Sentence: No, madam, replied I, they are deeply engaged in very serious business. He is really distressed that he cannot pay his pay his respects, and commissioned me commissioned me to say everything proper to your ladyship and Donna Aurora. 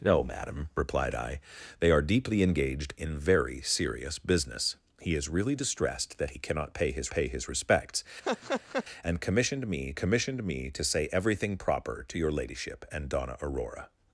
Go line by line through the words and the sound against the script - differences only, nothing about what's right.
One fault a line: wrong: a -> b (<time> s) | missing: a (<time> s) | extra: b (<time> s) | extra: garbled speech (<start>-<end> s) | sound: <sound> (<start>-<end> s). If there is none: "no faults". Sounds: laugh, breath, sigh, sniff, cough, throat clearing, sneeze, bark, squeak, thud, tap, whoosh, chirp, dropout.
sound: laugh (8.2-8.9 s)